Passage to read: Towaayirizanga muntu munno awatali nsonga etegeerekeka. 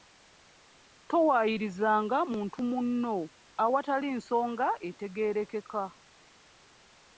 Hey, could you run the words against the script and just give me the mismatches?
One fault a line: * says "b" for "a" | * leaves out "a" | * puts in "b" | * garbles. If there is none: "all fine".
all fine